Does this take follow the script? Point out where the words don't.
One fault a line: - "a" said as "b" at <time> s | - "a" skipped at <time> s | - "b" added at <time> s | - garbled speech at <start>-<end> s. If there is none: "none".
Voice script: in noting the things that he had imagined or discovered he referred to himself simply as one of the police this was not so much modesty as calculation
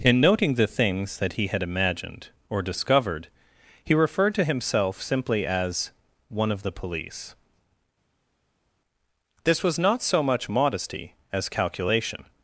none